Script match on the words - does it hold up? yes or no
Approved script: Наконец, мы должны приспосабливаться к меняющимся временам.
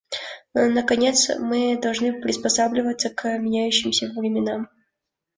yes